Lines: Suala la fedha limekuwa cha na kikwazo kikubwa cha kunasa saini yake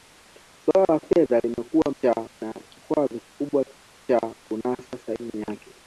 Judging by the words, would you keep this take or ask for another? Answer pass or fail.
pass